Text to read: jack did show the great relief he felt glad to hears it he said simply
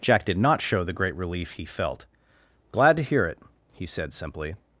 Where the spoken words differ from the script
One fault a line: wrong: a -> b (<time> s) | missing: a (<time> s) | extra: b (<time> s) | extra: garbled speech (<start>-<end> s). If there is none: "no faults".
extra: not (0.4 s)
wrong: hears -> hear (3.0 s)